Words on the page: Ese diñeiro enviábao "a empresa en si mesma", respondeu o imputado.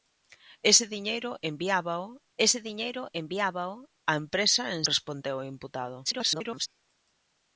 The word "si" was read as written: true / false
false